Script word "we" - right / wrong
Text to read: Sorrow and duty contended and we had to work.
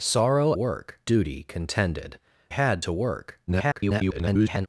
wrong